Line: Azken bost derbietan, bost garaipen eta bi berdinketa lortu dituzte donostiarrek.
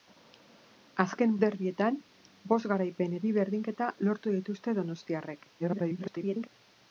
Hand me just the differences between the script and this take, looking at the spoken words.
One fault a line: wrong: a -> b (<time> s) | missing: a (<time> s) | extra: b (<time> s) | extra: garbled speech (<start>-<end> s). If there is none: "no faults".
missing: bost (1.4 s)
missing: eta (3.2 s)
extra: garbled speech (5.6-6.5 s)